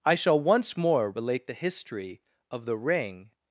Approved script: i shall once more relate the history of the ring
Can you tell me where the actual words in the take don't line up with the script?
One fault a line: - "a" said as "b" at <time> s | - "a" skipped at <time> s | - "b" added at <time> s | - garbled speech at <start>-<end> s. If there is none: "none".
none